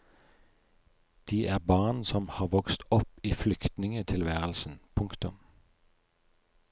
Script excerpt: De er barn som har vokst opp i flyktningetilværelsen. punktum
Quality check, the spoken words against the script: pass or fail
pass